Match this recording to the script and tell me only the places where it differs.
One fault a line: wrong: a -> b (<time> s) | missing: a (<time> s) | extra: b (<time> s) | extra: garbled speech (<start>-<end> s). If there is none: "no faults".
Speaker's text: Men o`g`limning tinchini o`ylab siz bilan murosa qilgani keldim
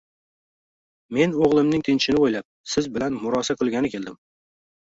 no faults